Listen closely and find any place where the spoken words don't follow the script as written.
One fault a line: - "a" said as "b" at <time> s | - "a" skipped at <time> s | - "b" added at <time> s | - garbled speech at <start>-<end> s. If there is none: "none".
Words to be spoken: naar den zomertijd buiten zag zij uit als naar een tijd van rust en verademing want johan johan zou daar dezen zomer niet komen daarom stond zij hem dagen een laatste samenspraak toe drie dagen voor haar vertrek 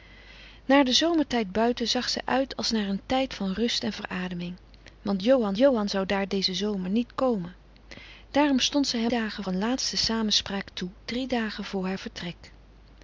none